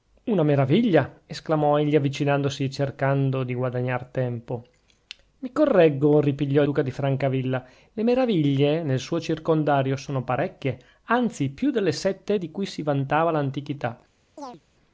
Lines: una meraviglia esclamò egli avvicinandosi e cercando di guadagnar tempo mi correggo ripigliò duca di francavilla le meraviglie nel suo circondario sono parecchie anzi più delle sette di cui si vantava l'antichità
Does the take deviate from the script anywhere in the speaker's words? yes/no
no